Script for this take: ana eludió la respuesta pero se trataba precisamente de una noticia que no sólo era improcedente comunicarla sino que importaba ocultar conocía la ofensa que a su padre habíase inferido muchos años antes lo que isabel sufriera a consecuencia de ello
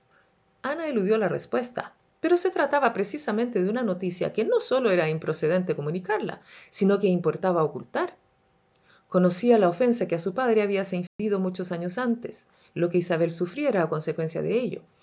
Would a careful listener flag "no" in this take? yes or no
no